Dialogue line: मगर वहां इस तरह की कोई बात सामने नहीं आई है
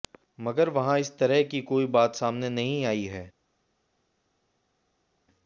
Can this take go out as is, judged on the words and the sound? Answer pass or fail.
pass